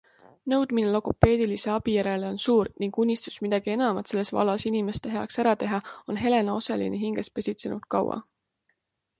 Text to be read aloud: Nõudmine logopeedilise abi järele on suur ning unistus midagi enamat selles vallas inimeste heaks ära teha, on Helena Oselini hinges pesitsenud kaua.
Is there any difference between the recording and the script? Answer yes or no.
no